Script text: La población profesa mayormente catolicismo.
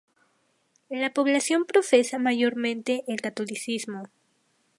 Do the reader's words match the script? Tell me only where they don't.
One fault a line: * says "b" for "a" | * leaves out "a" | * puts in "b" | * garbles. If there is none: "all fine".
* puts in "el"